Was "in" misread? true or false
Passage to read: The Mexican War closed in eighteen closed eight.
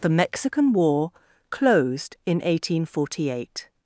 false